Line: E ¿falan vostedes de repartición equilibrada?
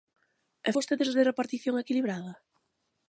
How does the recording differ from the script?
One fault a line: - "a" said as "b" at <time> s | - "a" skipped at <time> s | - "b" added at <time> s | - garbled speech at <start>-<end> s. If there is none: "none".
- "falan" skipped at 0.7 s